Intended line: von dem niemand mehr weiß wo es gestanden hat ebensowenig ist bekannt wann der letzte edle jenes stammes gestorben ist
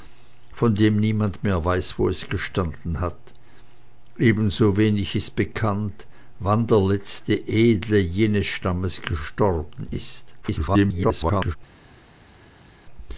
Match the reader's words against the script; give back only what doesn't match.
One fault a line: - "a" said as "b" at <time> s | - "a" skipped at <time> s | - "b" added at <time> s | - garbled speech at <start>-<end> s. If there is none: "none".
- garbled speech at 10.4-11.6 s